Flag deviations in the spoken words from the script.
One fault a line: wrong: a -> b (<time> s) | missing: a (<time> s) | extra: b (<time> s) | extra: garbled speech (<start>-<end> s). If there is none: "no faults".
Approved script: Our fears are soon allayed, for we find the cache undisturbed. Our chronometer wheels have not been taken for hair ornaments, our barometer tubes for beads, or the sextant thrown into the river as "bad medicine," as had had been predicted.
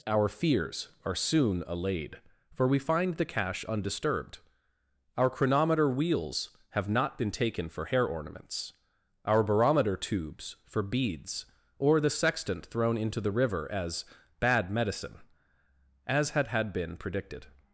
no faults